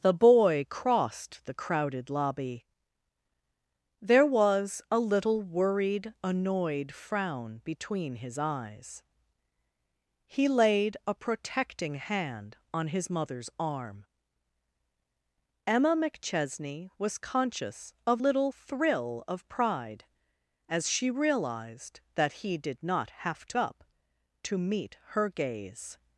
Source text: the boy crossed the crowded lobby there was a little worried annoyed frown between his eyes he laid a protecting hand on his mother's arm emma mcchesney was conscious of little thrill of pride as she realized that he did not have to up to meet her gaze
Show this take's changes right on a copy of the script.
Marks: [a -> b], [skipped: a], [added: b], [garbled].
the boy crossed the crowded lobby there was a little worried annoyed frown between his eyes he laid a protecting hand on his mother's arm emma mcchesney was conscious of little thrill of pride as she realized that he did not have to up to meet her gaze